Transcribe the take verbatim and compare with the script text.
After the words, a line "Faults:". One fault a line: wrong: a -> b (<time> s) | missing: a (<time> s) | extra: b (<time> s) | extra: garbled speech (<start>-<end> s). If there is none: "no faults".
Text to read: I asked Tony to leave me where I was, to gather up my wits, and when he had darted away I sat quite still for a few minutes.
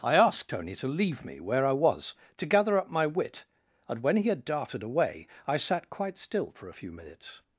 I asked Tony to leave me where I was, to gather up my wit, and when he had darted away I sat quite still for a few minutes.
Faults:
wrong: wits -> wit (3.0 s)